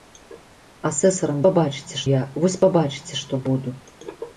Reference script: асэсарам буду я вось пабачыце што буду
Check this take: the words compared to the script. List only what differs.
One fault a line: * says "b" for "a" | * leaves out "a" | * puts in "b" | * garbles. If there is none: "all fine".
* says "пабачыце" for "буду"